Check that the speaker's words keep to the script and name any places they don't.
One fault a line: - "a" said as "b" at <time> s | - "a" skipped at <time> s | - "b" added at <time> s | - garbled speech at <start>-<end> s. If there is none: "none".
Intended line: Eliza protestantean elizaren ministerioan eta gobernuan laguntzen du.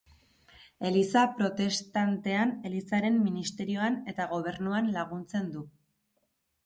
none